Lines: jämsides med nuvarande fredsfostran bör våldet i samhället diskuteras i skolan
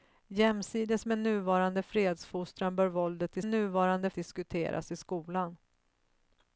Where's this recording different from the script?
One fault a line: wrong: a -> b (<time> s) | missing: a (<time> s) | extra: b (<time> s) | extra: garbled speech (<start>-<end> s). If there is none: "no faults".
wrong: samhället -> nuvarande (3.4 s)